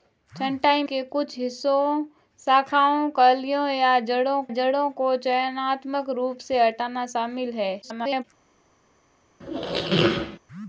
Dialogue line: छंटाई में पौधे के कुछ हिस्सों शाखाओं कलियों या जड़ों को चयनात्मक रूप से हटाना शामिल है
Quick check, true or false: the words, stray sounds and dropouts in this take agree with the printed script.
false